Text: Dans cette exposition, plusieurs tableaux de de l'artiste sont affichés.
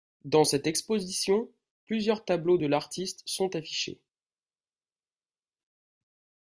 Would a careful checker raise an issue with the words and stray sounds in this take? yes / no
yes